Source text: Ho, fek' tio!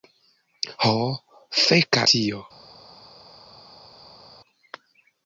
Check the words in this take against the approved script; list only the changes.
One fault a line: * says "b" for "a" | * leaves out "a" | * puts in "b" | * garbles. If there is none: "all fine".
all fine